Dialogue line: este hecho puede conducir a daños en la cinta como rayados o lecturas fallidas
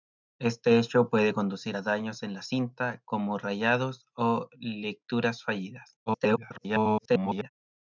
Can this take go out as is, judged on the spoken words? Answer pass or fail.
fail